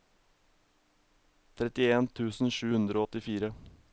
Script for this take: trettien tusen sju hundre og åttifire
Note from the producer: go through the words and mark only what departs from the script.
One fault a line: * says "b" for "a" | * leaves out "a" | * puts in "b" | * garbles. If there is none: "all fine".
all fine